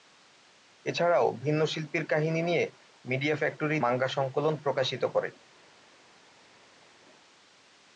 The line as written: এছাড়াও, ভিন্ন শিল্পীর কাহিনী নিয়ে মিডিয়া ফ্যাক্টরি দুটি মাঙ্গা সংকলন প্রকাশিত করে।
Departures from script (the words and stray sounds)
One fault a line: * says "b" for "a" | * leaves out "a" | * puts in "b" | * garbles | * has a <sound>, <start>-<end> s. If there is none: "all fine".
* leaves out "দুটি"